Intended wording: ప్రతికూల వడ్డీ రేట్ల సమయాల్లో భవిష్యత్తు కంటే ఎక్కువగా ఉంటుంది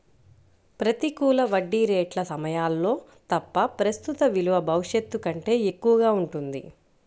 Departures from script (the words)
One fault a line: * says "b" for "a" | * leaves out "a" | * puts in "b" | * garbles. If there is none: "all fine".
* puts in "తప్ప ప్రస్తుత విలువ"